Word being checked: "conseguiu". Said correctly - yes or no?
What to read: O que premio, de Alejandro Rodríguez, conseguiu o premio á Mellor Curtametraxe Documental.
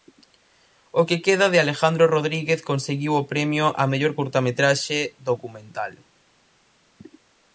yes